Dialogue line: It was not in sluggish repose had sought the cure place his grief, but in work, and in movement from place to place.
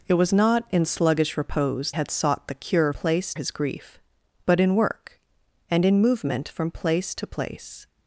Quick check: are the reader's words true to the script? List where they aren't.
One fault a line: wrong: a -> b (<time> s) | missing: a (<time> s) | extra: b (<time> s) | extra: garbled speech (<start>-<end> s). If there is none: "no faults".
no faults